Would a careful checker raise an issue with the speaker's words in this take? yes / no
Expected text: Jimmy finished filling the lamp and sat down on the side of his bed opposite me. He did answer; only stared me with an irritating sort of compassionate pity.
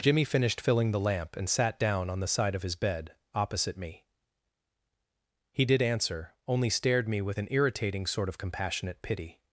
no